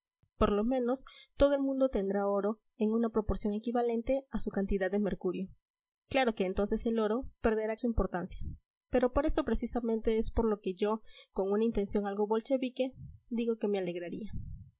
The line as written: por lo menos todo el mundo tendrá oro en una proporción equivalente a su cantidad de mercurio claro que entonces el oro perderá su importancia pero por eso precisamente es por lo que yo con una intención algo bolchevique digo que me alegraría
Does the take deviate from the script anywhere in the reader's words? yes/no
no